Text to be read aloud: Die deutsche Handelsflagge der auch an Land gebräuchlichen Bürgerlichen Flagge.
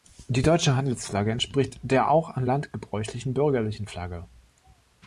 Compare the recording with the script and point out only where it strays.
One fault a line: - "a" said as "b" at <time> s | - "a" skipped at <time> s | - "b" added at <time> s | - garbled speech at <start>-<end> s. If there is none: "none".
- "entspricht" added at 1.3 s